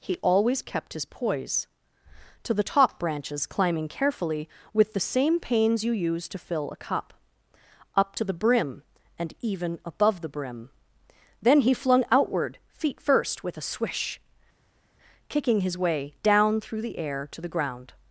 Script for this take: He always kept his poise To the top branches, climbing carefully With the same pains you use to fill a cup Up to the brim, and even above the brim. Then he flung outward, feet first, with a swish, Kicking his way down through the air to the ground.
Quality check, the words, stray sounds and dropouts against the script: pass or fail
pass